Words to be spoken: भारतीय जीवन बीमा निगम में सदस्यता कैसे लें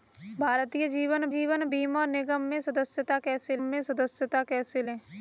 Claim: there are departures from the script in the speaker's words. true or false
true